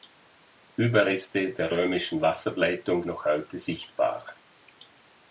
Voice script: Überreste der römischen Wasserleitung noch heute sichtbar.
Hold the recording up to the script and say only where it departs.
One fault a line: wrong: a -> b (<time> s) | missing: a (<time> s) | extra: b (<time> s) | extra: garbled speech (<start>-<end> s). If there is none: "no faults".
no faults